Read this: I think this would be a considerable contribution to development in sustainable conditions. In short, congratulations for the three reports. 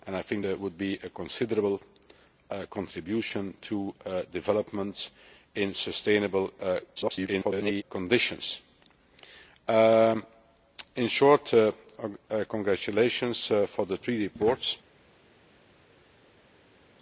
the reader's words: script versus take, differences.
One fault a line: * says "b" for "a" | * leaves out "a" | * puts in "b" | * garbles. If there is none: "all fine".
* leaves out "this"
* garbles